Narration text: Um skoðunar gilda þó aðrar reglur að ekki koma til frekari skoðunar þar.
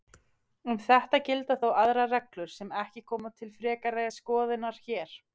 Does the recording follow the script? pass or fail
fail